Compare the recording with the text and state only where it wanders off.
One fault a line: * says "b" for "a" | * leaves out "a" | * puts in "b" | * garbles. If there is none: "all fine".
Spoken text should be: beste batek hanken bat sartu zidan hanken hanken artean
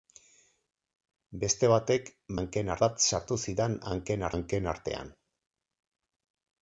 all fine